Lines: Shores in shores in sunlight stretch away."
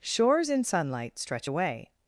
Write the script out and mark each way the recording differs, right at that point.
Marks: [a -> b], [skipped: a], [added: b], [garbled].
Shores in [skipped: shores in] sunlight stretch away."